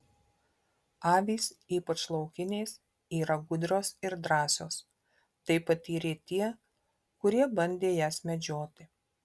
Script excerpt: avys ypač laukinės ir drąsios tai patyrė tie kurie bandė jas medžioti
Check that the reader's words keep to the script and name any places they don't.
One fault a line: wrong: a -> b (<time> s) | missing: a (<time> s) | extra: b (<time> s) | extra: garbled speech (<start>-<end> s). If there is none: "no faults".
extra: yra gudrios (3.2 s)